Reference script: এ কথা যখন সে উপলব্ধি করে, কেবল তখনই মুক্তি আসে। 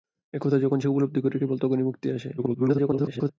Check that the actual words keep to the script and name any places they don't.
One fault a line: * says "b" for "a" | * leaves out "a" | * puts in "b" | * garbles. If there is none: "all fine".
* garbles